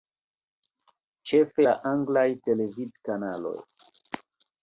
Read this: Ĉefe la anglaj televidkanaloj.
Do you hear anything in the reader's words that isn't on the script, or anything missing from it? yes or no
no